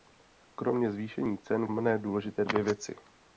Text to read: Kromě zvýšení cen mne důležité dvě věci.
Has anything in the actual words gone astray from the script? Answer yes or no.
no